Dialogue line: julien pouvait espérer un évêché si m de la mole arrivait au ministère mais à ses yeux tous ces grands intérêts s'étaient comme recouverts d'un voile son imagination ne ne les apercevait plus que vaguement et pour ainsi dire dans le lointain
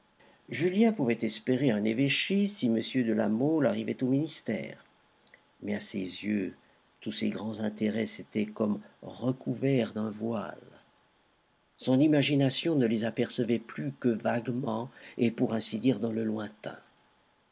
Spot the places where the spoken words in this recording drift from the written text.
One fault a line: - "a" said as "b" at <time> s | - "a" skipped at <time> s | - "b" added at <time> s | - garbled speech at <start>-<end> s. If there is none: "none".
- "ne" skipped at 12.8 s